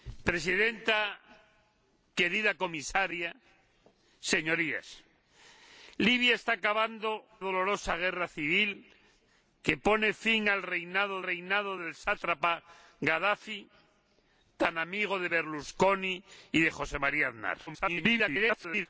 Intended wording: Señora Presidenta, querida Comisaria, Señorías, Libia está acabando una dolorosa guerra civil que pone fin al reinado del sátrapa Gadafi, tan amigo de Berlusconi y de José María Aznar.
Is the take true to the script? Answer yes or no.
no